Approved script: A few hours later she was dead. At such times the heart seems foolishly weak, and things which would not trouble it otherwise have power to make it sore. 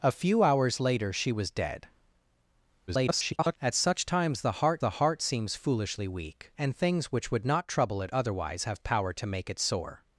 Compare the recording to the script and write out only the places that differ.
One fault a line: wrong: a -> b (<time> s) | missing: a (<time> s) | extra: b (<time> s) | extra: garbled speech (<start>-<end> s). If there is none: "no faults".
extra: garbled speech (2.9-3.6 s)
extra: the heart (4.8 s)